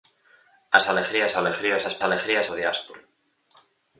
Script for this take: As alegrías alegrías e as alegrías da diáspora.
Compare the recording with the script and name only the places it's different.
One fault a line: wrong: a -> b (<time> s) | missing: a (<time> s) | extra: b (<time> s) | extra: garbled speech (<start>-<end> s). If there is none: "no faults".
no faults